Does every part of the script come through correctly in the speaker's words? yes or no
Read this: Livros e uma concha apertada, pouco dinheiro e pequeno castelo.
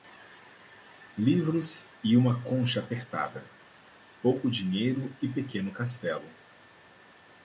yes